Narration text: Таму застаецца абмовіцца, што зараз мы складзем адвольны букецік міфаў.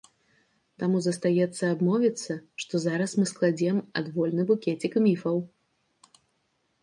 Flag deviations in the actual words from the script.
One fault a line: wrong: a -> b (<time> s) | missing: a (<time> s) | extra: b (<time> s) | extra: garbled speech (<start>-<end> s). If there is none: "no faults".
no faults